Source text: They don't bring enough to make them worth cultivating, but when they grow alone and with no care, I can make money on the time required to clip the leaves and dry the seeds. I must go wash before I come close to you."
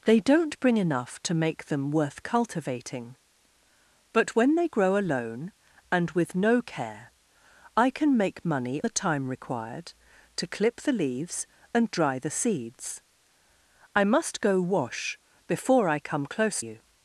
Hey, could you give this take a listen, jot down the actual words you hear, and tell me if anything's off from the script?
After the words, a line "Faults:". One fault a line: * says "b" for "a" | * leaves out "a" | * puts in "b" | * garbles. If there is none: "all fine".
They don't bring enough to make them worth cultivating, but when they grow alone and with no care, I can make money the time required to clip the leaves and dry the seeds. I must go wash before I come close you."
Faults:
* leaves out "on"
* leaves out "to"